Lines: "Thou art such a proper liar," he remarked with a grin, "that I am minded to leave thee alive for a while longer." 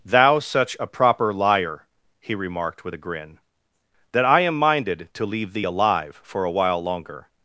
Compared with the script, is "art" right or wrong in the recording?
wrong